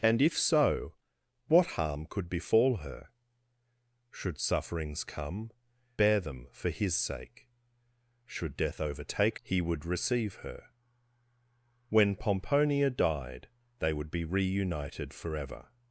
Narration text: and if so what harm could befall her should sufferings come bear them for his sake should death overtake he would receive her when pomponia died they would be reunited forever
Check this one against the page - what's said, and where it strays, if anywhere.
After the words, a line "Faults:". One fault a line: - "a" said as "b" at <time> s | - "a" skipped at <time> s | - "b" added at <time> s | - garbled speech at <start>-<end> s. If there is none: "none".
and if so what harm could befall her should sufferings come bear them for his sake should death overtake he would receive her when pomponia died they would be reunited forever
Faults:
none